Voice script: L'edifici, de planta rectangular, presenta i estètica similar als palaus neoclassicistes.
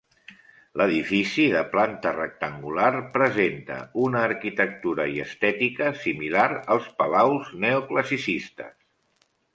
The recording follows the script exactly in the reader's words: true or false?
false